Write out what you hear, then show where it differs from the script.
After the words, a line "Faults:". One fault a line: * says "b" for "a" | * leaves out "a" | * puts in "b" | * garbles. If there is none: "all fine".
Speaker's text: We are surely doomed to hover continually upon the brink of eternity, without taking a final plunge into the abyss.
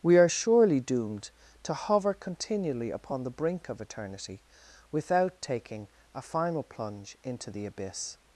We are surely doomed to hover continually upon the brink of eternity, without taking a final plunge into the abyss.
Faults:
all fine